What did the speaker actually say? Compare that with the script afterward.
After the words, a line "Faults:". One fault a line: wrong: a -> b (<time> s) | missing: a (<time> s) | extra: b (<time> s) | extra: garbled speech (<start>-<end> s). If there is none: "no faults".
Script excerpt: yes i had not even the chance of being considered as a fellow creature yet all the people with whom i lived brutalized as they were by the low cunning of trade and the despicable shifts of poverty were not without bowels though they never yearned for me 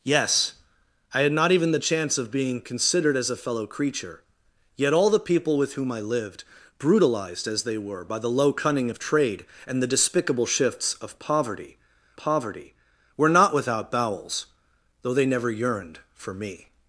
yes i had not even the chance of being considered as a fellow creature yet all the people with whom i lived brutalized as they were by the low cunning of trade and the despicable shifts of poverty poverty were not without bowels though they never yearned for me
Faults:
extra: poverty (12.2 s)